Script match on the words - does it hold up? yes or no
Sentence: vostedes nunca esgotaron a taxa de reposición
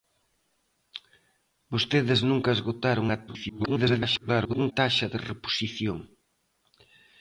no